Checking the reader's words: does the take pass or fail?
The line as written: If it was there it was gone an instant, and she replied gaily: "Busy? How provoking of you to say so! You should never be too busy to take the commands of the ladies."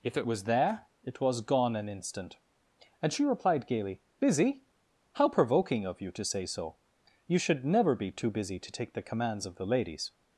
pass